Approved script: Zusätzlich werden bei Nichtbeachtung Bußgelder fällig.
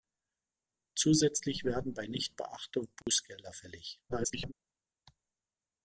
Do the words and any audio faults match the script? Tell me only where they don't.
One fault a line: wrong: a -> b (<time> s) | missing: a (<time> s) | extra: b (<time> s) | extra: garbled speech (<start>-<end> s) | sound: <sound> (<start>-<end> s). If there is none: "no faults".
sound: dropout (3.0-3.1 s)
extra: garbled speech (4.1-4.5 s)